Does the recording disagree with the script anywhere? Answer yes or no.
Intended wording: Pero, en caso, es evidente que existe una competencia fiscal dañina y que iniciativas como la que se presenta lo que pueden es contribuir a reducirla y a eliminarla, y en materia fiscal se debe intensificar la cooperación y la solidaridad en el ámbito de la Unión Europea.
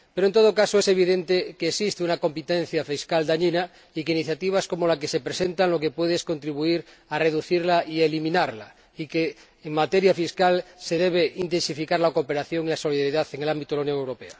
yes